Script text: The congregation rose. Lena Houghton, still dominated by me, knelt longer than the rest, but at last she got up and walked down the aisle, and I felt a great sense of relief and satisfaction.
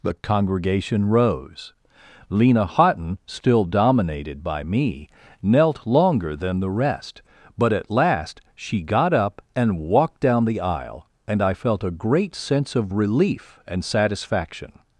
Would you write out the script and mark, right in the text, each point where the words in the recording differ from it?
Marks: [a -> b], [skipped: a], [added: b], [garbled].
The congregation rose. Lena Houghton, still dominated by me, knelt longer than the rest, but at last she got up and walked down the aisle, and I felt a great sense of relief and satisfaction.